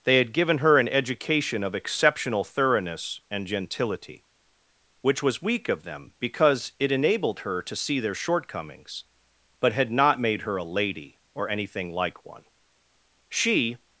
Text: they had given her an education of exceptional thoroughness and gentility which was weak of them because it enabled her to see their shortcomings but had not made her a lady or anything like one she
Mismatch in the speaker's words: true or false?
false